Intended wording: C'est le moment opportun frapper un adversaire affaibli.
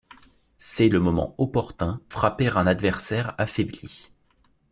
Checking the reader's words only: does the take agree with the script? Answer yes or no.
yes